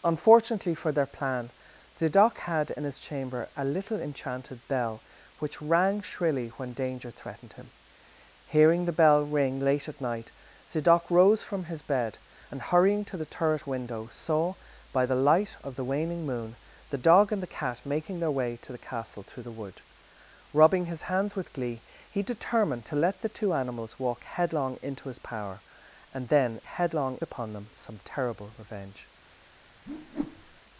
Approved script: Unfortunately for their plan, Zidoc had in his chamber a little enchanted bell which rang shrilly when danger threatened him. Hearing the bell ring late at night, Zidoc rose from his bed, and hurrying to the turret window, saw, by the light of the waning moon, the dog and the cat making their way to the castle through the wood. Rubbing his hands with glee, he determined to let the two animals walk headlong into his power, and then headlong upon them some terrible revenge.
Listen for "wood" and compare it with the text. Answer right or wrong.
right